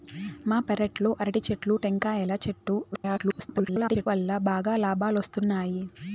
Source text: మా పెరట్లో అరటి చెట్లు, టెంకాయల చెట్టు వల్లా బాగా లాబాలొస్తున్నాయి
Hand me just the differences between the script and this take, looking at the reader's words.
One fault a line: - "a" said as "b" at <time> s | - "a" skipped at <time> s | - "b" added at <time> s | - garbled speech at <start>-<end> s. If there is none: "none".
- garbled speech at 2.9-4.1 s